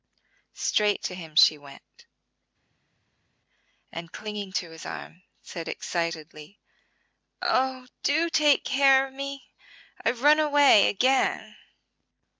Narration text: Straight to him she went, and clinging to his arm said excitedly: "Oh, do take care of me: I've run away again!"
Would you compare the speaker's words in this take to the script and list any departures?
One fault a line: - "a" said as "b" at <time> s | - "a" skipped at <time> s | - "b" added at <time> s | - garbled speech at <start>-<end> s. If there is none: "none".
none